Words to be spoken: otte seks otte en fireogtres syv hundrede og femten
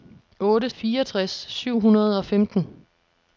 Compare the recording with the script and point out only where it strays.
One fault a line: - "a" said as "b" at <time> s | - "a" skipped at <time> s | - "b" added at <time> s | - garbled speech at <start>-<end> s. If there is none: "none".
- "seks otte en" skipped at 0.7 s